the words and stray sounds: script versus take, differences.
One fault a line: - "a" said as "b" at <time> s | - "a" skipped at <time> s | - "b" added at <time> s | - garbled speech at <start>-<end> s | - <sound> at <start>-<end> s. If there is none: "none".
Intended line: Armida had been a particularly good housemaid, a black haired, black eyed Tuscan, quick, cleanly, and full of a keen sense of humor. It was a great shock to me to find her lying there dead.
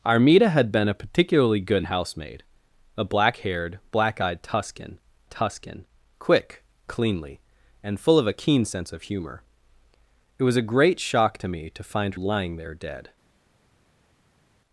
- "Tuscan" added at 5.3 s
- "her" skipped at 12.1 s